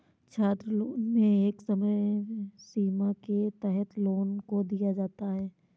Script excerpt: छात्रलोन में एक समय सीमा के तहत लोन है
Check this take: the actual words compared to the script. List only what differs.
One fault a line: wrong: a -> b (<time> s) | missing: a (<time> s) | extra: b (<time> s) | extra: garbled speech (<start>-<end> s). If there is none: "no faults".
extra: को दिया जाता (4.4 s)